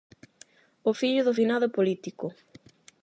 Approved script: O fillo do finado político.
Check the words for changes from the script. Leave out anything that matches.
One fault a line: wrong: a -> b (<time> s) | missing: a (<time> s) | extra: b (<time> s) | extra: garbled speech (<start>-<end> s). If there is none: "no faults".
no faults